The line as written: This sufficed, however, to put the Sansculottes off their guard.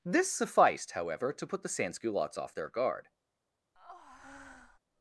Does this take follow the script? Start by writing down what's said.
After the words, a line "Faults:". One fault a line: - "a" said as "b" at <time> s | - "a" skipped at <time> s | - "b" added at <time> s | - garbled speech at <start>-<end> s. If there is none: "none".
This sufficed, however, to put the Sansculottes off their guard.
Faults:
none